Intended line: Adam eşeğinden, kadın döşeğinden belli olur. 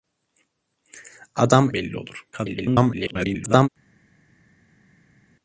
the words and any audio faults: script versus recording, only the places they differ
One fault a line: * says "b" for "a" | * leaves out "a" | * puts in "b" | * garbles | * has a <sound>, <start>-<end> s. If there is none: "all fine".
* leaves out "eşeğinden kadın döşeğinden"
* garbles